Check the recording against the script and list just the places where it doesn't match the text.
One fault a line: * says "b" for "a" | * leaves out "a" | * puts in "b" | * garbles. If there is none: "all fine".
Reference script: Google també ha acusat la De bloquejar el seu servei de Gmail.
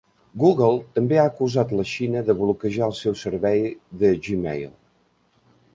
* puts in "Xina"